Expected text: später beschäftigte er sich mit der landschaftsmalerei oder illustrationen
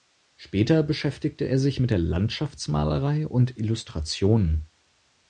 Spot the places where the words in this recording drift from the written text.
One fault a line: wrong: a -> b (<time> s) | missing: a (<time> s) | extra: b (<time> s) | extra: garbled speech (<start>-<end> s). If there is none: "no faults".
wrong: oder -> und (3.2 s)